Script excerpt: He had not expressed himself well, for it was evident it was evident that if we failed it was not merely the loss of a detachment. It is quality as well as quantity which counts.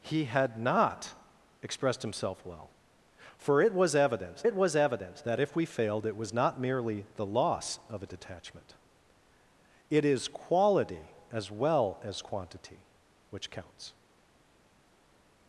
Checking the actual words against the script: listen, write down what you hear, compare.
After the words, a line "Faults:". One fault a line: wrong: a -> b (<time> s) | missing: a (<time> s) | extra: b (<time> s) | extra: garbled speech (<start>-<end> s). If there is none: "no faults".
He had not expressed himself well, for it was evident it was evident that if we failed it was not merely the loss of a detachment. It is quality as well as quantity which counts.
Faults:
no faults